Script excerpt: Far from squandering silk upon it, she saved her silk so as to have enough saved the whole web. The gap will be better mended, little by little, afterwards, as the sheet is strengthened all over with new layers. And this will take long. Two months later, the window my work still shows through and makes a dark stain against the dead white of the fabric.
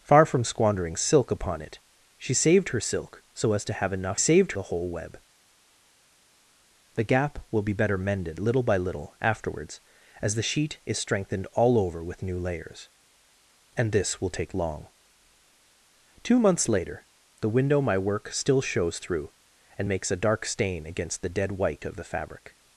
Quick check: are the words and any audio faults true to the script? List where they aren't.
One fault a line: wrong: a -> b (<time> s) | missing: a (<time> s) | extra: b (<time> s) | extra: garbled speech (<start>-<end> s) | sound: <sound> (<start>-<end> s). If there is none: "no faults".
no faults